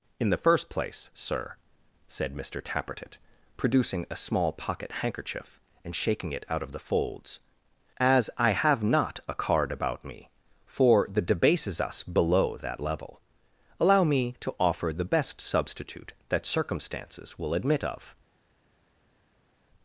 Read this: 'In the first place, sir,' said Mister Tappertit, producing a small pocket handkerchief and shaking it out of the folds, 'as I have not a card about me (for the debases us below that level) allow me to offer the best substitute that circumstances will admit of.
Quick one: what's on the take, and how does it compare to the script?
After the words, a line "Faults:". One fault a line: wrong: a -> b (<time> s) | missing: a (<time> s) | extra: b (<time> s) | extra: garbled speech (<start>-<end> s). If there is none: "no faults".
'In the first place, sir,' said Mister Tappertit, producing a small pocket handkerchief and shaking it out of the folds, 'as I have not a card about me (for the debases us below that level) allow me to offer the best substitute that circumstances will admit of.
Faults:
no faults